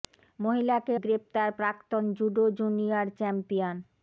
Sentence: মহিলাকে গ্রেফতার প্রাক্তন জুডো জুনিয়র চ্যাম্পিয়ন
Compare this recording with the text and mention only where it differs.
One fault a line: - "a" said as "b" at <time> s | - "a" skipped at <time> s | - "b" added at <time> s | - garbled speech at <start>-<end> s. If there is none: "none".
none